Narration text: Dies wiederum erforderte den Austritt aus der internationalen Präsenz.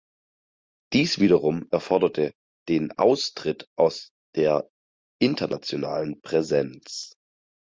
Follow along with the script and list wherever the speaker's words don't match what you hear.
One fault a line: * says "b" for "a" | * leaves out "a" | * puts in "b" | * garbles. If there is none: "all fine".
all fine